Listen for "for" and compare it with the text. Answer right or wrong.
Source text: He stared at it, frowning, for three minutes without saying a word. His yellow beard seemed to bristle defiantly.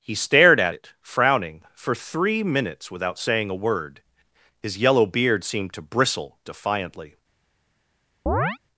right